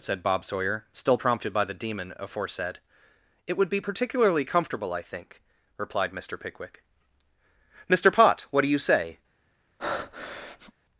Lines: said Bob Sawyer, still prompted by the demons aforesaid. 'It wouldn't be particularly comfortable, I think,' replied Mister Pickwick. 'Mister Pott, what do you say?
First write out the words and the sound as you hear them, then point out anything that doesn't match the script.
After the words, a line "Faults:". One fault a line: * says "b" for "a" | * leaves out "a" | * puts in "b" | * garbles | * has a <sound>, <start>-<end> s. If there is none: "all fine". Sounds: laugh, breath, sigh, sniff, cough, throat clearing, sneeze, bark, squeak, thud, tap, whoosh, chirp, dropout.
said Bob Sawyer, still prompted by the demon aforesaid. 'It would be particularly comfortable, I think,' replied Mister Pickwick. 'Mister Pott, what do you say?
Faults:
* says "demon" for "demons"
* says "would" for "wouldn't"
* has a breath, 9.8-10.7 s